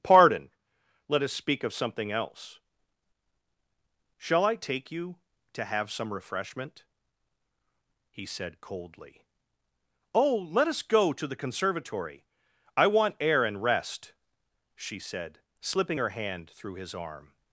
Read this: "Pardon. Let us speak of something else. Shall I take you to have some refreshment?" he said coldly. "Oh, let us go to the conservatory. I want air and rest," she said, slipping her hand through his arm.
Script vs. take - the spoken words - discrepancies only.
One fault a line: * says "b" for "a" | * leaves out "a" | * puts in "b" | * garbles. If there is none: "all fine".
all fine